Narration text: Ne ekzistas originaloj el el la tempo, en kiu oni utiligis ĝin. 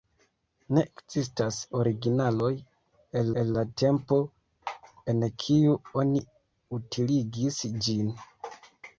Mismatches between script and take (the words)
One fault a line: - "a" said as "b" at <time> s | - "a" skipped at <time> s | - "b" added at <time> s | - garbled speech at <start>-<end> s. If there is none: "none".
none